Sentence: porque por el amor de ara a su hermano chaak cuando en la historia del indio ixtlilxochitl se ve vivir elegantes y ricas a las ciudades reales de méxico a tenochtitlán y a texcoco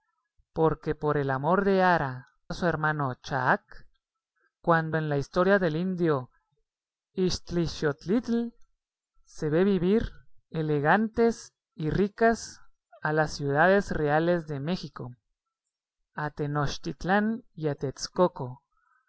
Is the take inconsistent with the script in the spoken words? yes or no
no